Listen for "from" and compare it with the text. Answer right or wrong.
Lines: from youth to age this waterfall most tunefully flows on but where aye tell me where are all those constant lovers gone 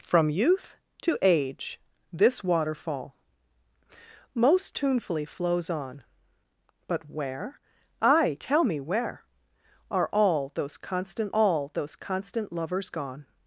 right